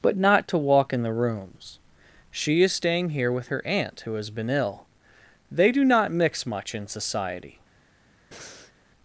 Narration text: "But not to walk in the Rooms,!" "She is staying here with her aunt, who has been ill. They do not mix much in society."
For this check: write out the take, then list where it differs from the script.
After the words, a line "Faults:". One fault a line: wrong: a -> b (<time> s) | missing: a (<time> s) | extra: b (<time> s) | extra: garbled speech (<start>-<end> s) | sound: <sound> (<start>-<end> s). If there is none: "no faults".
"But not to walk in the Rooms,!" "She is staying here with her aunt, who has been ill. They do not mix much in society."
Faults:
sound: breath (8.3-8.7 s)